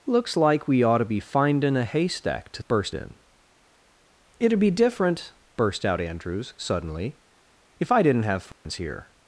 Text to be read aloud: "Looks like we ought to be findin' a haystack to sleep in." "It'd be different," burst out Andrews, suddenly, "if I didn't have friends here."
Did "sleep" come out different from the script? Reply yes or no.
yes